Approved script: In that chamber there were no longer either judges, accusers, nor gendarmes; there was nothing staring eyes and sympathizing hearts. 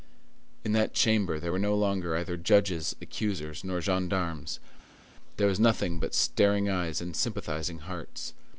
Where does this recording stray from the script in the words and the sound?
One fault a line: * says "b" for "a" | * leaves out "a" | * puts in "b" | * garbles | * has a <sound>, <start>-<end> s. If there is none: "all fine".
* puts in "but"